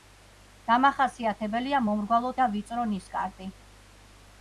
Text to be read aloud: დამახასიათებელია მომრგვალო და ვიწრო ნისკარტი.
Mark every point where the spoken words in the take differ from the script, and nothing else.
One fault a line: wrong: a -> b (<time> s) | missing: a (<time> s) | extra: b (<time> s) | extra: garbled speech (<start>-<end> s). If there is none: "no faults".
no faults